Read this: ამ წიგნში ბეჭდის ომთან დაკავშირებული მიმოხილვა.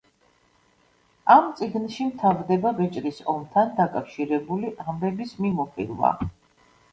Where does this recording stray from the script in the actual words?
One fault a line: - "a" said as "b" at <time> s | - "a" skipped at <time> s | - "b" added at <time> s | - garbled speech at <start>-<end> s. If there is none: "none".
- "მთავრდება" added at 2.1 s
- "ამბების" added at 4.9 s